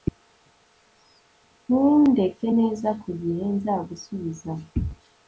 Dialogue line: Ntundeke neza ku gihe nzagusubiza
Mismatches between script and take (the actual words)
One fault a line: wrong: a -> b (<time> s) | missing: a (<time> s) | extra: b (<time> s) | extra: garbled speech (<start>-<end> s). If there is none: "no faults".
no faults